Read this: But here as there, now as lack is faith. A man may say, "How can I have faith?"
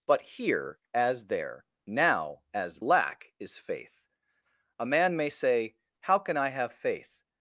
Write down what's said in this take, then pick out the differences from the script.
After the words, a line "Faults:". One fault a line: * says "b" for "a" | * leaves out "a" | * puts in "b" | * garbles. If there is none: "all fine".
But here as there, now as lack is faith. A man may say, "How can I have faith?"
Faults:
all fine